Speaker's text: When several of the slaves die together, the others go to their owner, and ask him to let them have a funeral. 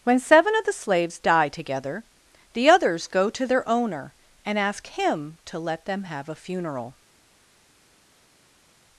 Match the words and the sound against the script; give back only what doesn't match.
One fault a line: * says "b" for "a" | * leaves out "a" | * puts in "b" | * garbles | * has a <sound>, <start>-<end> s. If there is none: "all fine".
* says "seven" for "several"